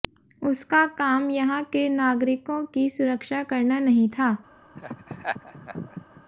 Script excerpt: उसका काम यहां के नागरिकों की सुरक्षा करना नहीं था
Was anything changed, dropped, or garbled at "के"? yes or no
no